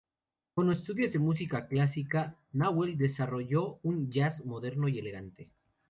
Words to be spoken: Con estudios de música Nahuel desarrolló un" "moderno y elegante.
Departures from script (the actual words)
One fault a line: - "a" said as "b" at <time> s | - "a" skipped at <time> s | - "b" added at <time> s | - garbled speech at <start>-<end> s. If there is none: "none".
- "clásica" added at 1.7 s
- "jazz" added at 4.1 s